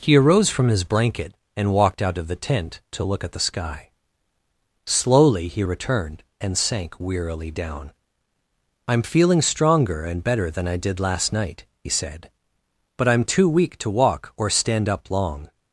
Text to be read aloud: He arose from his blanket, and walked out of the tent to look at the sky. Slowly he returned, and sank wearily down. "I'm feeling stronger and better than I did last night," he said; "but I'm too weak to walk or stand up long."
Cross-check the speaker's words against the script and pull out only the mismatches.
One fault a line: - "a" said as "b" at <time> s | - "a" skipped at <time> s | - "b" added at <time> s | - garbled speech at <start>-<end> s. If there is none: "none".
none